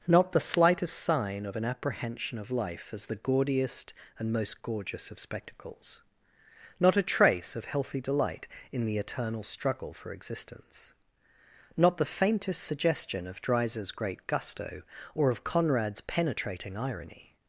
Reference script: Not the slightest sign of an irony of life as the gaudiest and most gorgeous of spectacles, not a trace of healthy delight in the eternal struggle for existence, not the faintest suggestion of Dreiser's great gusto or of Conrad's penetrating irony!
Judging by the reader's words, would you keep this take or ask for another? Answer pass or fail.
fail